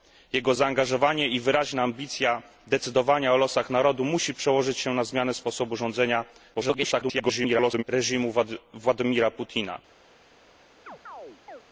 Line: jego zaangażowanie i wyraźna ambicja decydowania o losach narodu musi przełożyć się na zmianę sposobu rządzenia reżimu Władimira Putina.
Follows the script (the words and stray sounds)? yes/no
no